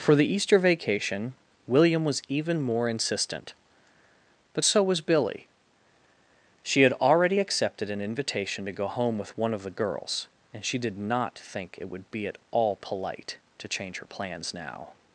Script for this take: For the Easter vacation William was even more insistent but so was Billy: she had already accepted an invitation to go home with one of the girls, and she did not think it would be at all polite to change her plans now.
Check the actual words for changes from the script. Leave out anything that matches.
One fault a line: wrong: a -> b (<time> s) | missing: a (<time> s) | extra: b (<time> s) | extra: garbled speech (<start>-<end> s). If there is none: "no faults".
no faults